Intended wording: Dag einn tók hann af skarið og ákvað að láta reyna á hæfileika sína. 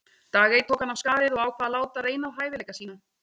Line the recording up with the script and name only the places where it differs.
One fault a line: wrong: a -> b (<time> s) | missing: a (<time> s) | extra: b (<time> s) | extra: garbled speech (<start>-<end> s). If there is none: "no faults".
no faults